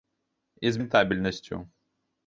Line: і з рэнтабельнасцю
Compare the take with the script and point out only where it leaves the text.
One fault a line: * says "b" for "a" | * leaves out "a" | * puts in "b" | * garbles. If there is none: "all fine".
all fine